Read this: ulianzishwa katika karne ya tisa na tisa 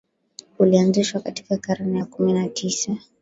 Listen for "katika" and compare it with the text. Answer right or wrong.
right